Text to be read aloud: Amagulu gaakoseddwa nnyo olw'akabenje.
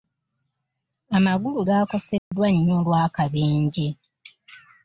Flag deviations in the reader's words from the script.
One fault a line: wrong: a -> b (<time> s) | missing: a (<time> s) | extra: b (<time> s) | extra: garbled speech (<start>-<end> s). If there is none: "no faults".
no faults